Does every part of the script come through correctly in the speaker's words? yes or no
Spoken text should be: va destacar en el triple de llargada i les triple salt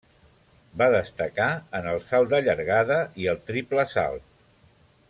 no